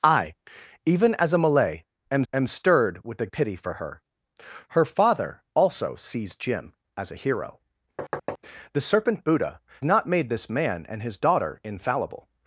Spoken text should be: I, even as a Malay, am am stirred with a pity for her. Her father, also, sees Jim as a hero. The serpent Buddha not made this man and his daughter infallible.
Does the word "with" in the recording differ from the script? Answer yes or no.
no